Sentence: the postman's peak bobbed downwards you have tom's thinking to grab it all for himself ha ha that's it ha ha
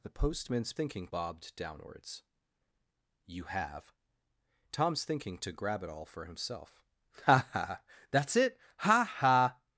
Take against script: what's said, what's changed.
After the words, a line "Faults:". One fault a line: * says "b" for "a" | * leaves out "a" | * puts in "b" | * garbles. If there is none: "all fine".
the postman's thinking bobbed downwards you have tom's thinking to grab it all for himself ha ha that's it ha ha
Faults:
* says "thinking" for "peak"